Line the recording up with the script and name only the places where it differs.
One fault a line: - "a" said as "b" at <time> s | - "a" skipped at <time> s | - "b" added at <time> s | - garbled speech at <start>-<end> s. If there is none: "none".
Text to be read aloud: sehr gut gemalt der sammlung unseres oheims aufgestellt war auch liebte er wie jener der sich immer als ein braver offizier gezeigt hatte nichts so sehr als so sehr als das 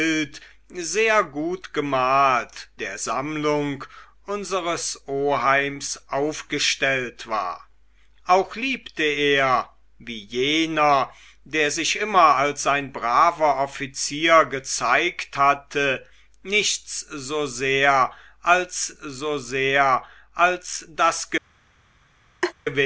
none